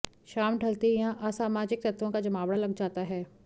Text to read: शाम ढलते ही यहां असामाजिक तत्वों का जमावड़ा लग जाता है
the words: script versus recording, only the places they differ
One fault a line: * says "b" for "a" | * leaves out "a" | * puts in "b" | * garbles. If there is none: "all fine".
all fine